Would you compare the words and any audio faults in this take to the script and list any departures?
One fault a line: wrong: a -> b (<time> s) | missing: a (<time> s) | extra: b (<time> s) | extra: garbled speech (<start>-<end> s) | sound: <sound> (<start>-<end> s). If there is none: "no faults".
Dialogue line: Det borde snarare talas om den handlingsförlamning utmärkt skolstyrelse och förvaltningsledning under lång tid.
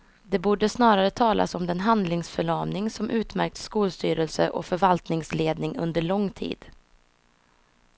extra: som (2.9 s)